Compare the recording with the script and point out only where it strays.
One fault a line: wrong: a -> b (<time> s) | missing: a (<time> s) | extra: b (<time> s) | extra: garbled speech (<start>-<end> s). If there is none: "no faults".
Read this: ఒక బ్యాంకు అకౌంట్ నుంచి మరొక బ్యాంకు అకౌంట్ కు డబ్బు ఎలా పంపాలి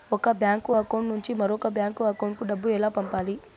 no faults